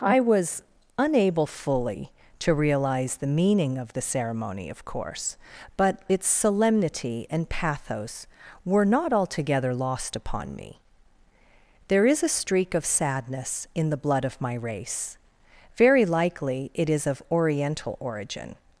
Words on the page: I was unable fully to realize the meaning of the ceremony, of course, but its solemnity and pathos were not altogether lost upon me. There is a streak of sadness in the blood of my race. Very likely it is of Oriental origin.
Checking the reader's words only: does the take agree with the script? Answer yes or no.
yes